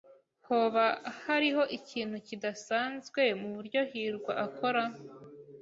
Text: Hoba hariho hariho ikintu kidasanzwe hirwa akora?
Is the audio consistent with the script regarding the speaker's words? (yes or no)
no